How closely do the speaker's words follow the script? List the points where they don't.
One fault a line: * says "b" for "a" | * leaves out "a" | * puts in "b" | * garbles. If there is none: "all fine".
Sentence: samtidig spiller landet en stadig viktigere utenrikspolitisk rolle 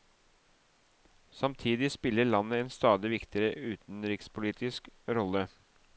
all fine